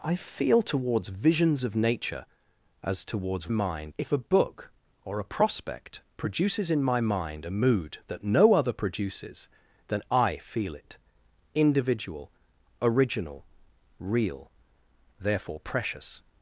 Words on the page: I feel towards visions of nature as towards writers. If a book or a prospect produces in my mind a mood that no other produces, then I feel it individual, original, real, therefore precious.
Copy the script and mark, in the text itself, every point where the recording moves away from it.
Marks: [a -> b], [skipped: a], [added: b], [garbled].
I feel towards visions of nature as towards [writers. -> mind] If a book or a prospect produces in my mind a mood that no other produces, then I feel it individual, original, real, therefore precious.